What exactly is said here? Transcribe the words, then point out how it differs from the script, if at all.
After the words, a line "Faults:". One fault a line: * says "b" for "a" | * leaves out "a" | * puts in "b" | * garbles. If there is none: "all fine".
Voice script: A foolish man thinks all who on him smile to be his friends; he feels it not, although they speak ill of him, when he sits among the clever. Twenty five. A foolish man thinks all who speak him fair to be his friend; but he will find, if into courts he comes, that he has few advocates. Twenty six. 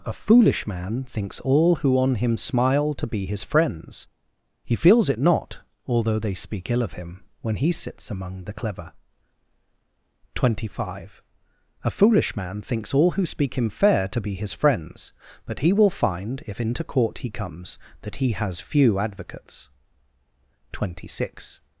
A foolish man thinks all who on him smile to be his friends; he feels it not, although they speak ill of him, when he sits among the clever. Twenty five. A foolish man thinks all who speak him fair to be his friends; but he will find, if into court he comes, that he has few advocates. Twenty six.
Faults:
* says "friends" for "friend"
* says "court" for "courts"